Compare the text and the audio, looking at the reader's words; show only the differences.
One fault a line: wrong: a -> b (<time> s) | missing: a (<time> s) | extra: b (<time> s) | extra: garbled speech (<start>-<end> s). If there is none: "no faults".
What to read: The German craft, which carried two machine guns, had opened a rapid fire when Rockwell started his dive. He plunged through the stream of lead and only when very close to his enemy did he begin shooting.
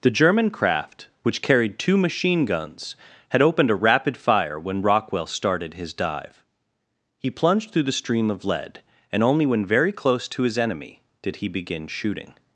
no faults